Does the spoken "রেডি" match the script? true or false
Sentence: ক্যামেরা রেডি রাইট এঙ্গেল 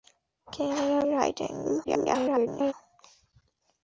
false